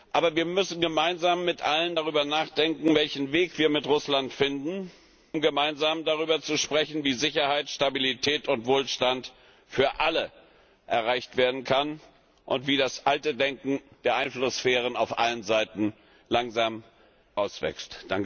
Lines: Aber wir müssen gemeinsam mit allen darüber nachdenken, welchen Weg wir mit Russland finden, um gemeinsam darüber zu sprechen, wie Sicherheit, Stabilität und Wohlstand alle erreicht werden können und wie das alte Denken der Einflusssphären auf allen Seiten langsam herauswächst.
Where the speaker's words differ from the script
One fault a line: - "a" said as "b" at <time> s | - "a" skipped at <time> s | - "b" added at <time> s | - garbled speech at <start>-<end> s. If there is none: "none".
- "für" added at 9.7 s